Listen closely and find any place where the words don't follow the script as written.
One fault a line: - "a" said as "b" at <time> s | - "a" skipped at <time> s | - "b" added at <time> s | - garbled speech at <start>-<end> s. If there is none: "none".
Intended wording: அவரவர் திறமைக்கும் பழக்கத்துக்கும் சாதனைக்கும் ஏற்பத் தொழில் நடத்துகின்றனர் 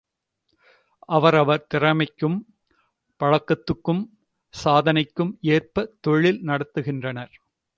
none